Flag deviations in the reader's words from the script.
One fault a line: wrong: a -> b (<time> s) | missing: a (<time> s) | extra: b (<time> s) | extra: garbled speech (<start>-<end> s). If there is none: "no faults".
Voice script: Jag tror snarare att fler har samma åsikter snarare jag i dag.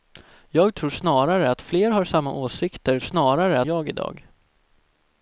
no faults